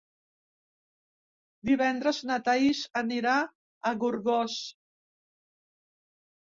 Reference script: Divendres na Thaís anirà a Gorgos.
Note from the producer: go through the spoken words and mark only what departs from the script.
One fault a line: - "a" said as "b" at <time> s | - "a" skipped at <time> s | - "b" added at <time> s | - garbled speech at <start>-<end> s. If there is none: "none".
none